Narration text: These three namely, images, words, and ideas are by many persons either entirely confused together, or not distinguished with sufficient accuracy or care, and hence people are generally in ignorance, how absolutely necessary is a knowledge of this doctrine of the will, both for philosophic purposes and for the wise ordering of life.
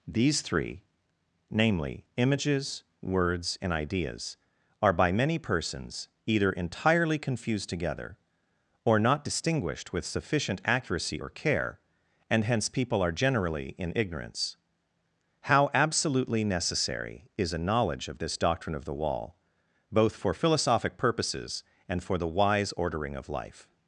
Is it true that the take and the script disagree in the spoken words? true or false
true